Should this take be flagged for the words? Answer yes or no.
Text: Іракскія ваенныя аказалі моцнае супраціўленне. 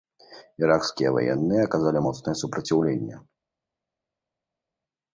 no